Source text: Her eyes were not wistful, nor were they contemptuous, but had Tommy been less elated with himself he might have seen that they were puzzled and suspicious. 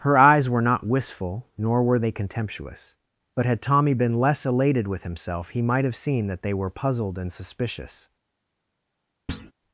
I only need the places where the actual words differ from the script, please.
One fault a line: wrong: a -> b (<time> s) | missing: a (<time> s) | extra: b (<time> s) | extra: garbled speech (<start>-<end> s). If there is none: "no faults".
no faults